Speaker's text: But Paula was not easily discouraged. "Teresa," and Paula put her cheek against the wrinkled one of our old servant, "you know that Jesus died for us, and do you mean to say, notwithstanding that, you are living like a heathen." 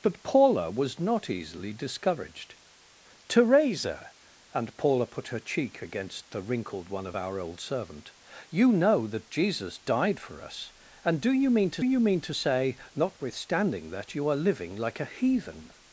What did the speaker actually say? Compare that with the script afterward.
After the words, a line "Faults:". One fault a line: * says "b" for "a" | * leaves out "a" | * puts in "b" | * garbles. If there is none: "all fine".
But Paula was not easily discouraged. "Teresa," and Paula put her cheek against the wrinkled one of our old servant, "you know that Jesus died for us, and do you mean to you mean to say, notwithstanding that, you are living like a heathen."
Faults:
* puts in "you mean to"